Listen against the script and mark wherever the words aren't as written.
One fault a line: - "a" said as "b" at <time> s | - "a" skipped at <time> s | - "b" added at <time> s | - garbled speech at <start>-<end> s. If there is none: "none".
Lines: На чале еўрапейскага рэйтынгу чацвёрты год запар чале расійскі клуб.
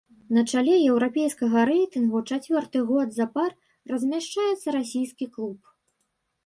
- "чале" said as "размяшчаецца" at 3.9 s